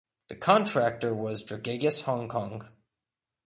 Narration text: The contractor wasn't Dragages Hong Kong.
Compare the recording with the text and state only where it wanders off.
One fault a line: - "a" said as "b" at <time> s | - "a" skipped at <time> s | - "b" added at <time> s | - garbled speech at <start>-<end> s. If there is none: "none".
- "wasn't" said as "was" at 1.1 s